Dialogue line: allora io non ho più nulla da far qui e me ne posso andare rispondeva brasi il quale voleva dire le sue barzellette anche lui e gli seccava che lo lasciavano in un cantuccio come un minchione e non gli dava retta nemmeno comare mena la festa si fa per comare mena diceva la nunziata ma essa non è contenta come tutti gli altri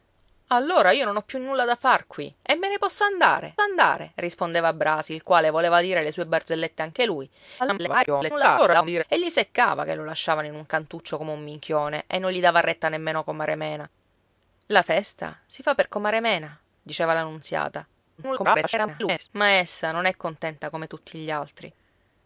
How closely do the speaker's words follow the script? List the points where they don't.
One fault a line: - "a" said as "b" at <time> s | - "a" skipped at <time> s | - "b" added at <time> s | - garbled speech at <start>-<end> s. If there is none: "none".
- "andare" added at 3.6 s
- garbled speech at 7.6-9.0 s
- garbled speech at 18.2-19.3 s